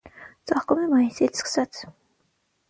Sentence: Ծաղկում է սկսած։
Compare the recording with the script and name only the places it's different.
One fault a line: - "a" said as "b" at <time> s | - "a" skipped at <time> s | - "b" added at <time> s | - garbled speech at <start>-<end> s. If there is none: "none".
- "մայիսից" added at 0.9 s